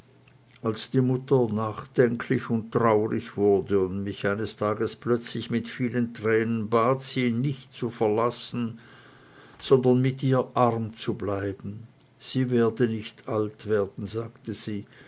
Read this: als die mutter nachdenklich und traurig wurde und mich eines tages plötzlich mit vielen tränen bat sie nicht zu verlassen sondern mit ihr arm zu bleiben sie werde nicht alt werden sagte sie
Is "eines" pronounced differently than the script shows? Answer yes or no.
no